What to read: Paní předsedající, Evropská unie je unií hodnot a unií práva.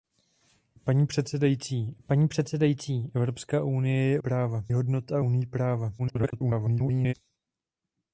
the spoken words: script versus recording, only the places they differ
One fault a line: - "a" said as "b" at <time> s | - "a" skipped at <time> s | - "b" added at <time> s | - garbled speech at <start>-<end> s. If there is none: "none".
- "paní předsedající" added at 2.1 s
- "unií" said as "práva" at 4.2 s
- garbled speech at 6.0-7.1 s